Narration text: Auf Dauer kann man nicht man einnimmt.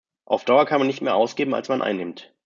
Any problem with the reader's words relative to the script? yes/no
yes